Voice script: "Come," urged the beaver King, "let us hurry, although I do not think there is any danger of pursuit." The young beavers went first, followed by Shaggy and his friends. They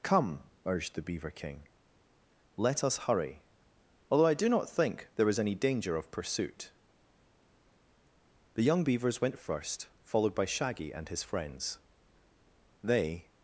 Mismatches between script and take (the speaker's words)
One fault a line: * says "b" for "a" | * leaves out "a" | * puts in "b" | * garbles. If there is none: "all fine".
all fine